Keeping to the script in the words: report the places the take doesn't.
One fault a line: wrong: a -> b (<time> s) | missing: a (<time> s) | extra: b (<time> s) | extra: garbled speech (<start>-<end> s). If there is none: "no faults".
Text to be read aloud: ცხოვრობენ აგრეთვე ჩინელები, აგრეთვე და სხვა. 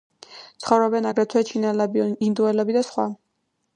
wrong: აგრეთვე -> ინდოელები (2.3 s)